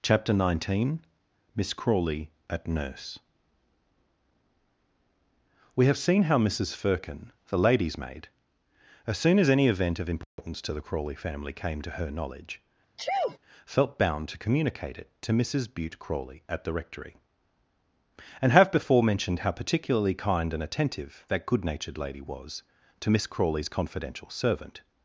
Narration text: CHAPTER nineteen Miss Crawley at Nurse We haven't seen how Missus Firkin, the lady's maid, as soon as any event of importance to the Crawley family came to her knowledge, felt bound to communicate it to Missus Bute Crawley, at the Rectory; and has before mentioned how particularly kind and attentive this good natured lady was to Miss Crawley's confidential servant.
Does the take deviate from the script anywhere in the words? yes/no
yes